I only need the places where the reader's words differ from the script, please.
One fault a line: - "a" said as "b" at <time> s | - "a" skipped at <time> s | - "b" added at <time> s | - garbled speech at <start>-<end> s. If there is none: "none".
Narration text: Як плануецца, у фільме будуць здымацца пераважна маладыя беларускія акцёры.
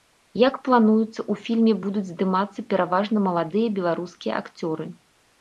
none